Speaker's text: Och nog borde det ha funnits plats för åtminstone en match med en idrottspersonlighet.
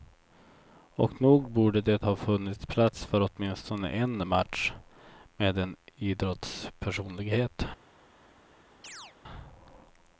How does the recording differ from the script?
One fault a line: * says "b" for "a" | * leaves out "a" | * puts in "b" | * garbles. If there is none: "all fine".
all fine